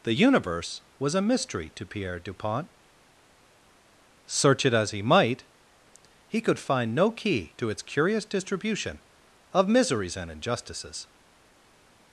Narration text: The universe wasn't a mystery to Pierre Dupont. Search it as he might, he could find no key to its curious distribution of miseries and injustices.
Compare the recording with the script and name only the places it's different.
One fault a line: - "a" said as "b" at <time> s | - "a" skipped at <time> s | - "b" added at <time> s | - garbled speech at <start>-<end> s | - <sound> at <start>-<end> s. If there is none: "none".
- "wasn't" said as "was" at 1.0 s